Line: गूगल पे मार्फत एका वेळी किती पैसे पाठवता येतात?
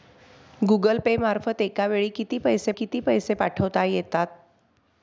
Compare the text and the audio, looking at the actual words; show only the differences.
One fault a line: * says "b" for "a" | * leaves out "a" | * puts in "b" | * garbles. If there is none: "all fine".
* puts in "किती पैसे"